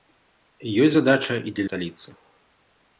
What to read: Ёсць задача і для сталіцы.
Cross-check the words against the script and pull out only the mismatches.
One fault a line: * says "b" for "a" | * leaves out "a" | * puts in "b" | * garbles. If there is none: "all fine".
all fine